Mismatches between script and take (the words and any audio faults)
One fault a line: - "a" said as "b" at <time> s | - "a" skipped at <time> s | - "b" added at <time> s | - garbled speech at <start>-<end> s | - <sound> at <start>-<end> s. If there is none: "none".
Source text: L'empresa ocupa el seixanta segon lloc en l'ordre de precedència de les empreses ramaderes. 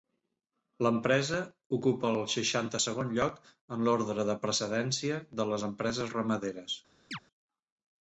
- chirp at 7.1-7.2 s